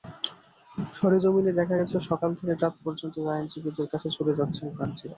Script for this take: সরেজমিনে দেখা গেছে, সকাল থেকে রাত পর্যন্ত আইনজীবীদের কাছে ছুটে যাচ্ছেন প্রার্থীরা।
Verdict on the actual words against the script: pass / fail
pass